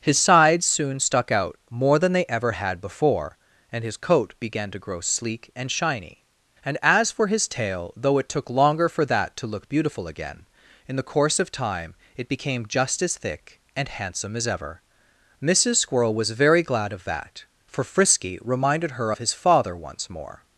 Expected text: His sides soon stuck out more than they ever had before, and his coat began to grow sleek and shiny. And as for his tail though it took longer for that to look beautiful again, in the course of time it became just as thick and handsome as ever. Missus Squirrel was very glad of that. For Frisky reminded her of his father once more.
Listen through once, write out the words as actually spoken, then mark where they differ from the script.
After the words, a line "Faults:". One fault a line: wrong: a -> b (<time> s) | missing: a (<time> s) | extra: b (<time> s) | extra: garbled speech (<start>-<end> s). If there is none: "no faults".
His sides soon stuck out more than they ever had before, and his coat began to grow sleek and shiny. And as for his tail though it took longer for that to look beautiful again, in the course of time it became just as thick and handsome as ever. Missus Squirrel was very glad of that. For Frisky reminded her of his father once more.
Faults:
no faults